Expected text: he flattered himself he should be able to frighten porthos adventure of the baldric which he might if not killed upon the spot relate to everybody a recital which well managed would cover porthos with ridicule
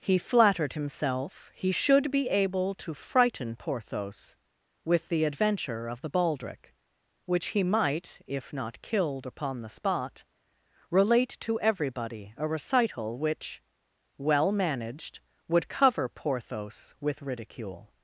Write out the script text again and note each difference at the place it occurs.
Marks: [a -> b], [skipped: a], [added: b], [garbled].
he flattered himself he should be able to frighten porthos [added: with the] adventure of the baldric which he might if not killed upon the spot relate to everybody a recital which well managed would cover porthos with ridicule